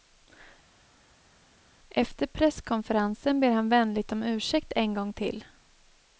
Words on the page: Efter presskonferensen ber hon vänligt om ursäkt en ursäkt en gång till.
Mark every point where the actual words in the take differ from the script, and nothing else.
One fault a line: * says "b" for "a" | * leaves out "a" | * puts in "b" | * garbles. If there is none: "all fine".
* says "han" for "hon"
* leaves out "ursäkt en"